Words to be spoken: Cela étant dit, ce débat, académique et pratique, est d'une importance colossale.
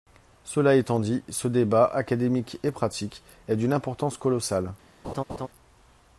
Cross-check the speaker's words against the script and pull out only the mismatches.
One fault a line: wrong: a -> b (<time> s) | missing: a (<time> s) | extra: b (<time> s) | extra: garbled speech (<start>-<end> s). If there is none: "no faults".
no faults